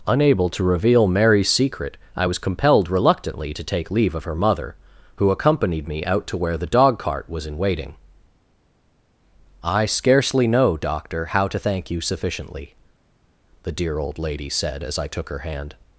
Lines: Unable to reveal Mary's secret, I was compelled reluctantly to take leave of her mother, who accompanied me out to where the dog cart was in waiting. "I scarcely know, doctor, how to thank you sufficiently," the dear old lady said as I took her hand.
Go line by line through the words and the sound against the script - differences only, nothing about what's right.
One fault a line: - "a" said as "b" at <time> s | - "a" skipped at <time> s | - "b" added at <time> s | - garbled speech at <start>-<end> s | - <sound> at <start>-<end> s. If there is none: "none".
none